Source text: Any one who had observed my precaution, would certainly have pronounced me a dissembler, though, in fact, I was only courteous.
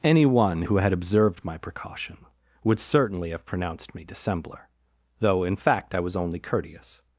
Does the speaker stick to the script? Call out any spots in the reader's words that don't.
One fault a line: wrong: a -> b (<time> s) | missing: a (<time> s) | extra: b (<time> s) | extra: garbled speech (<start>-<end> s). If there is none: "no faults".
missing: a (4.1 s)